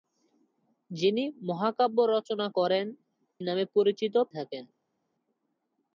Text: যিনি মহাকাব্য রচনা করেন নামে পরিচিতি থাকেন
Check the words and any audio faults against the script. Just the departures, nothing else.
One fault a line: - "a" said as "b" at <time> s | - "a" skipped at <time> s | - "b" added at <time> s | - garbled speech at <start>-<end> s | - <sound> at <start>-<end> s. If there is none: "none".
none